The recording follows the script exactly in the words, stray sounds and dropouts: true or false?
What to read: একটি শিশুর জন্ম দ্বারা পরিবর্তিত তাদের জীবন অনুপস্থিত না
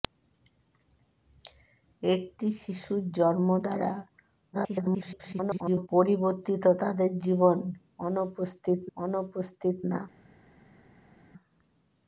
false